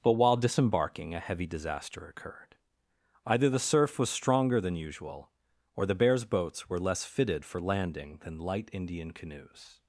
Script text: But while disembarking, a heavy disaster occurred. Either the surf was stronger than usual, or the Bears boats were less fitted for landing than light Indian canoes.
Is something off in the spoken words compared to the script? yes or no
no